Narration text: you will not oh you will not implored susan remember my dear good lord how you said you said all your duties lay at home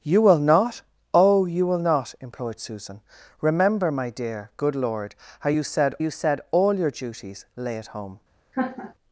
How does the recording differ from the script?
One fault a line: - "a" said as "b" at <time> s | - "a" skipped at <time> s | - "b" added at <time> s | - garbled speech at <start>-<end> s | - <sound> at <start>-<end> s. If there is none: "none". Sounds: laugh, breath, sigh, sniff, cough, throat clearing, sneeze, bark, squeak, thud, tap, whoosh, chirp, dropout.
- laugh at 8.5-8.9 s